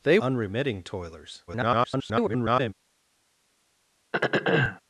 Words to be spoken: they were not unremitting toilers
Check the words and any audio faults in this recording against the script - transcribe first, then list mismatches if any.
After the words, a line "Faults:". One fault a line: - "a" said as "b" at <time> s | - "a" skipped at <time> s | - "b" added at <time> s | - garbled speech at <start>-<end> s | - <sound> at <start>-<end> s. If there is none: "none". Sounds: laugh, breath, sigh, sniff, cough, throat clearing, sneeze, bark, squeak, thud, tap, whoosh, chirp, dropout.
they unremitting toilers [garbled]
Faults:
- "were not" skipped at 0.2 s
- garbled speech at 1.5-2.7 s
- throat clearing at 4.1-4.8 s